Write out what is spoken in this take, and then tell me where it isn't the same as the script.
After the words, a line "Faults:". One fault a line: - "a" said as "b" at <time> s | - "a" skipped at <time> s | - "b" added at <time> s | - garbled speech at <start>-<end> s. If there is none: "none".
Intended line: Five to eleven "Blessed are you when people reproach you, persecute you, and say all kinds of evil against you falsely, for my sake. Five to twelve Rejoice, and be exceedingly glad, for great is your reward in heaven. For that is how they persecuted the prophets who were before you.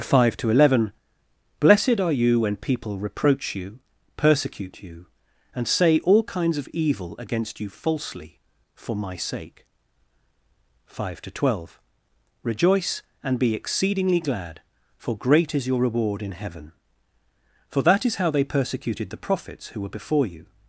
Five to eleven "Blessed are you when people reproach you, persecute you, and say all kinds of evil against you falsely, for my sake. Five to twelve Rejoice, and be exceedingly glad, for great is your reward in heaven. For that is how they persecuted the prophets who were before you.
Faults:
none